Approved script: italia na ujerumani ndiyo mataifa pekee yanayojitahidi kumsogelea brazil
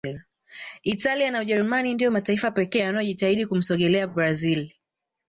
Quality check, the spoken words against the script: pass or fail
pass